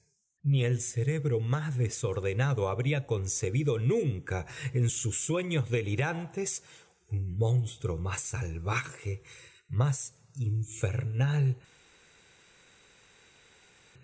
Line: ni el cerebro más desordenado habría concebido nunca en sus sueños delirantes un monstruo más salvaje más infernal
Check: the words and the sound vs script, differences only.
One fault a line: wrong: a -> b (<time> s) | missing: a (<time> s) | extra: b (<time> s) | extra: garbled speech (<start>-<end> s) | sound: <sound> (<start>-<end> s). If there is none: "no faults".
no faults